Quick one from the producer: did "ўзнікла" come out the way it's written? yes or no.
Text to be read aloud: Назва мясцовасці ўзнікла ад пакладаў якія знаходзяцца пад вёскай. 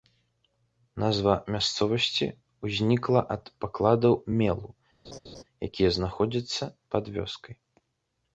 yes